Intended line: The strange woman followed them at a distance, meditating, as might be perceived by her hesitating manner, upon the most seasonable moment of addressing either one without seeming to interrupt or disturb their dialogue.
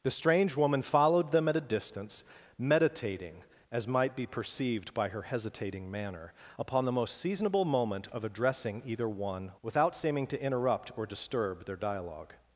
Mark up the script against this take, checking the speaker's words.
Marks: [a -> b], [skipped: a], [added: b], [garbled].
The strange woman followed them at a distance, meditating, as might be perceived by her hesitating manner, upon the most seasonable moment of addressing either one without seeming to interrupt or disturb their dialogue.